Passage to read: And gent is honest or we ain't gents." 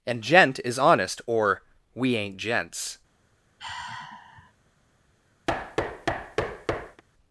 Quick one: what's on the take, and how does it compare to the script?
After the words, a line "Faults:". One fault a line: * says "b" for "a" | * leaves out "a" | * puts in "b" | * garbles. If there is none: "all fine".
And gent is honest or we ain't gents."
Faults:
all fine